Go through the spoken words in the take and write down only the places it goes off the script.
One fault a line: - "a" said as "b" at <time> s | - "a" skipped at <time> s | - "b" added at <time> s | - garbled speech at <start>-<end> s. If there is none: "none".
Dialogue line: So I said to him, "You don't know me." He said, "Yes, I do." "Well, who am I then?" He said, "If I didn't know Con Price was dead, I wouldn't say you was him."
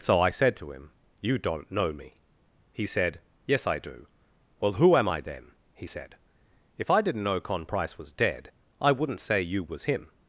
none